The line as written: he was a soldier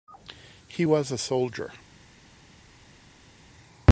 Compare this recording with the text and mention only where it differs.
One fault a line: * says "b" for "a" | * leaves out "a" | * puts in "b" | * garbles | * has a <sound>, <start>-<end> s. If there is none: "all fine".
all fine